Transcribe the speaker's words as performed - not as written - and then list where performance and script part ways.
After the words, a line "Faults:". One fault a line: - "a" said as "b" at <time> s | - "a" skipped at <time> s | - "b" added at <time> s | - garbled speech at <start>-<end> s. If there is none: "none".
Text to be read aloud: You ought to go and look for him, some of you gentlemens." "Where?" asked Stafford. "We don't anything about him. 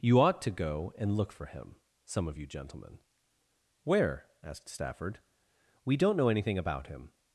You ought to go and look for him, some of you gentlemen." "Where?" asked Stafford. "We don't know anything about him.
Faults:
- "gentlemens" said as "gentlemen" at 2.5 s
- "know" added at 6.2 s